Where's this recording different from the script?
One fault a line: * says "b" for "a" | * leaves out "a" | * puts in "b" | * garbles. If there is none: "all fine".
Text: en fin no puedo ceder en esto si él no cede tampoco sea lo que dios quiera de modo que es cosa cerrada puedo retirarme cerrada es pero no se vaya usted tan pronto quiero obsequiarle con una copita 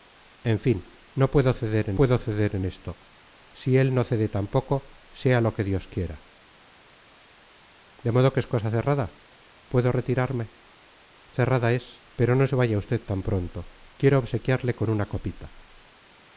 * puts in "puedo ceder en"